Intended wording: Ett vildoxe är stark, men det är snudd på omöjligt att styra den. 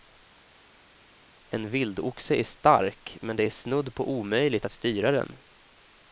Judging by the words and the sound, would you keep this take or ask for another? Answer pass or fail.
fail